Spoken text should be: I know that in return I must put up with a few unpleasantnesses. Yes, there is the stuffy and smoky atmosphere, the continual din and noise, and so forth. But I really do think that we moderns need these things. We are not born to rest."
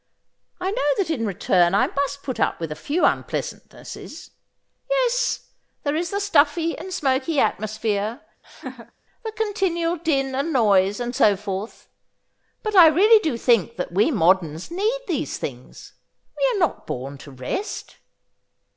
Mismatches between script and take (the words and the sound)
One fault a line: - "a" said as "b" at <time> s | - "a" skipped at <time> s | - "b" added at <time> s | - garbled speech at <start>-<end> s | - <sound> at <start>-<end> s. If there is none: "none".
- laugh at 8.4-8.9 s